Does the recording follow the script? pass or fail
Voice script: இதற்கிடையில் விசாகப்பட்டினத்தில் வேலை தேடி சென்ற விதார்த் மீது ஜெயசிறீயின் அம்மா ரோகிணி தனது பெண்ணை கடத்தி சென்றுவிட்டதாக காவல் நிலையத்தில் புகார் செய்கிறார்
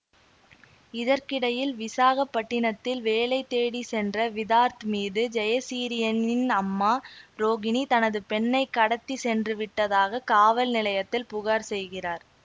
pass